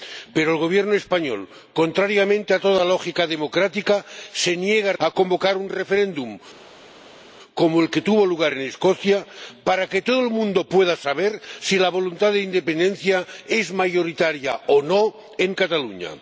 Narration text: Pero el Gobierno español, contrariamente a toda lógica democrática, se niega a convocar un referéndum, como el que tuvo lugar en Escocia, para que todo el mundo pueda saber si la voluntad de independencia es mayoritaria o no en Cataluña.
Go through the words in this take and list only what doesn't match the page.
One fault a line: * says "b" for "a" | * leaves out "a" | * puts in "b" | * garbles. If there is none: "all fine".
all fine